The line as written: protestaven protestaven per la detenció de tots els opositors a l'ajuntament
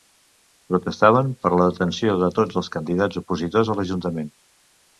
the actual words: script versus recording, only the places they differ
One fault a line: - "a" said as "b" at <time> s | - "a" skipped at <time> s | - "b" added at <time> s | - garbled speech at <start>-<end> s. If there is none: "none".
- "protestaven" skipped at 1.3 s
- "candidats" added at 2.8 s